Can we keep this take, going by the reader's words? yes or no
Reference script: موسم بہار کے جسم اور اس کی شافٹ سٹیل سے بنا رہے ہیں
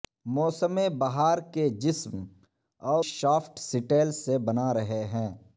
no